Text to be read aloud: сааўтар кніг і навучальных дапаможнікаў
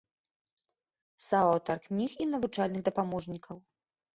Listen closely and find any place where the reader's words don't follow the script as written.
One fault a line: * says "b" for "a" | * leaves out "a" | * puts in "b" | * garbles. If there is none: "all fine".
all fine